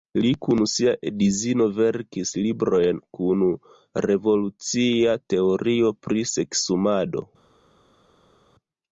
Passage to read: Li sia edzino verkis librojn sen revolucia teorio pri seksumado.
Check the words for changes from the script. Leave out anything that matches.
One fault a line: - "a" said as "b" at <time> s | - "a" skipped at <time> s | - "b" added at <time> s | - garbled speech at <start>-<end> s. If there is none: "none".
- "kun" added at 0.4 s
- "sen" said as "kun" at 3.2 s